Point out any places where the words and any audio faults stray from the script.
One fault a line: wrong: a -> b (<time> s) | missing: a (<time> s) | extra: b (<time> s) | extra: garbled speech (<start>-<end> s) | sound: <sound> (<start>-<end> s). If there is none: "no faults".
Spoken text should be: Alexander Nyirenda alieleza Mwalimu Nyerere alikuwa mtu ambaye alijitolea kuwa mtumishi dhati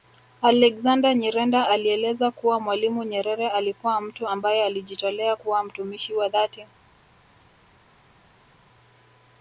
extra: kuwa (2.3 s)
extra: wa (6.1 s)